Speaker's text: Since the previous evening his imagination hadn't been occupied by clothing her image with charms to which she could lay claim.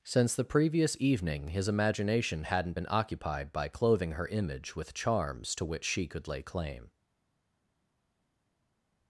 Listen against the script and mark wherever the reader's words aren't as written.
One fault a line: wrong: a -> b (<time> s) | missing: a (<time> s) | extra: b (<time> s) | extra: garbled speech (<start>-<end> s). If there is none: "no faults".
no faults